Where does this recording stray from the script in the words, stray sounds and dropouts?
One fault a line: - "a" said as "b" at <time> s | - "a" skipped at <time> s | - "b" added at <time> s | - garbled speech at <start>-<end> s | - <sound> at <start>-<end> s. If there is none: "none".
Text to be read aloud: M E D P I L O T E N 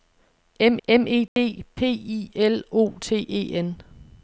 - "m" added at 0.9 s
- dropout at 1.3-1.4 s